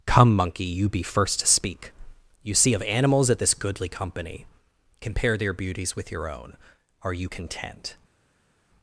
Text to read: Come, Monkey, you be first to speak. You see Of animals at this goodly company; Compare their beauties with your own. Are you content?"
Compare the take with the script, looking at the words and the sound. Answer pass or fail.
pass